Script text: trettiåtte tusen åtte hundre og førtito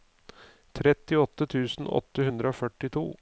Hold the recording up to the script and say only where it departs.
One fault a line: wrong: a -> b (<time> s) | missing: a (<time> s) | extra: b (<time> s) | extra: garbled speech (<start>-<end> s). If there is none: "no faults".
no faults